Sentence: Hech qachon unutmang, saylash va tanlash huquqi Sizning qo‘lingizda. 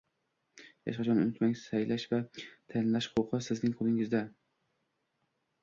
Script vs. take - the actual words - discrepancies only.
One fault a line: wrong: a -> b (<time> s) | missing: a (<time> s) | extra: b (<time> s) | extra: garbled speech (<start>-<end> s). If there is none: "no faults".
no faults